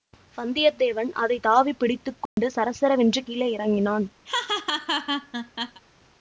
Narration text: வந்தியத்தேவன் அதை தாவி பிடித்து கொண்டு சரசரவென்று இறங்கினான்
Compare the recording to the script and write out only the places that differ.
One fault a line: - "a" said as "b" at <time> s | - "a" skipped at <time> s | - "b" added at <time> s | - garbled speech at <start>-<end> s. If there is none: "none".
- "கீழே" added at 3.2 s